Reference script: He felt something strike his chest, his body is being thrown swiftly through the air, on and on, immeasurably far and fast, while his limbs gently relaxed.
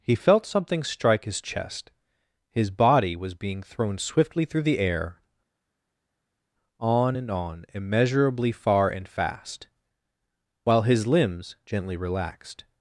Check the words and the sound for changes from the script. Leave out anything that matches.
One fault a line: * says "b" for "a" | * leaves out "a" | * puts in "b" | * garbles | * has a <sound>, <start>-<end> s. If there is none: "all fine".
* says "was" for "is"